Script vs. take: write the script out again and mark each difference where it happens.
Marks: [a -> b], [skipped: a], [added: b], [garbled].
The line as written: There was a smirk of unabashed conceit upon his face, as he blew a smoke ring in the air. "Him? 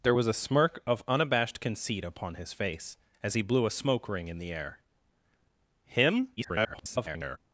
There was a smirk of unabashed conceit upon his face, as he blew a smoke ring in the air. "Him? [garbled]